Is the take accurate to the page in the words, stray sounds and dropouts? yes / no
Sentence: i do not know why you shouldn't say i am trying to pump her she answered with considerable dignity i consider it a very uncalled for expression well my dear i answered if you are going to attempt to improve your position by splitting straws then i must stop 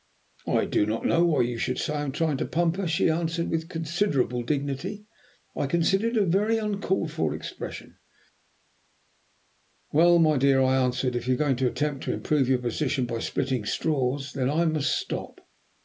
no